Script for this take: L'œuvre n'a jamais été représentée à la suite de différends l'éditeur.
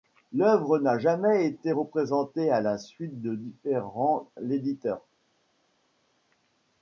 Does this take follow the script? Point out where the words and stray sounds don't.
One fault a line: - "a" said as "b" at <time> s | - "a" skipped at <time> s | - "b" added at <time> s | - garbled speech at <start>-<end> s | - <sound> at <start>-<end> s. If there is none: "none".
none